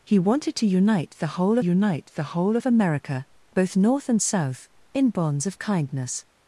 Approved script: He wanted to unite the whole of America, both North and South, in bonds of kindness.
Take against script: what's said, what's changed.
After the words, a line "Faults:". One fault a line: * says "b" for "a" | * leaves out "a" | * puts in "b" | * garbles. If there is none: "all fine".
He wanted to unite the whole unite the whole of America, both North and South, in bonds of kindness.
Faults:
* puts in "unite the whole"